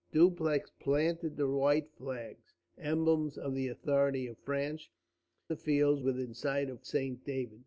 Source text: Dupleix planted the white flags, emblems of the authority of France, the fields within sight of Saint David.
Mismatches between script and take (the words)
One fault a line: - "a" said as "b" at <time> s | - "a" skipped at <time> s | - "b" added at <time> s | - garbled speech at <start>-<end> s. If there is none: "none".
none